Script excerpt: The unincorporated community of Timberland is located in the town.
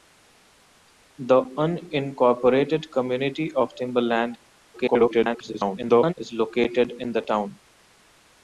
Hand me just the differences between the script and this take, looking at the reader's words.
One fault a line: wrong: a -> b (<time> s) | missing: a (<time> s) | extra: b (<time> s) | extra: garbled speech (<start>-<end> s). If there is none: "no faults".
extra: garbled speech (4.7-6.1 s)